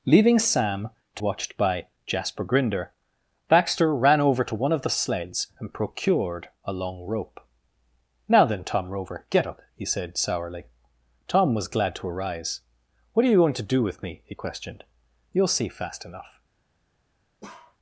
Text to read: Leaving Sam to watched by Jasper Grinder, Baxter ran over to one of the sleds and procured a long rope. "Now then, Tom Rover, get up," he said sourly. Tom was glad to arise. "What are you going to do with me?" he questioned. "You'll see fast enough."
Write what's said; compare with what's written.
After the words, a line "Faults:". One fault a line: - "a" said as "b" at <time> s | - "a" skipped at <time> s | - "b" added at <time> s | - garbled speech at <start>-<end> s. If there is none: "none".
Leaving Sam to watched by Jasper Grinder, Baxter ran over to one of the sleds and procured a long rope. "Now then, Tom Rover, get up," he said sourly. Tom was glad to arise. "What are you going to do with me?" he questioned. "You'll see fast enough."
Faults:
none